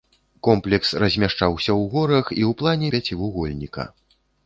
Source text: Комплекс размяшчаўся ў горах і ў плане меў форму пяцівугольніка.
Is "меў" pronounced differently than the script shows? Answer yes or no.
yes